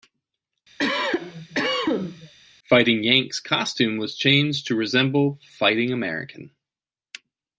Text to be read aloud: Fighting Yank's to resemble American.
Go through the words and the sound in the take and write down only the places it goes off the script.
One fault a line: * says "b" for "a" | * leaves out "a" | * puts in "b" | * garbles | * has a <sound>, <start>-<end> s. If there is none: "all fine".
* has a cough, 0.8-2.3 s
* puts in "costume was changed"
* puts in "Fighting"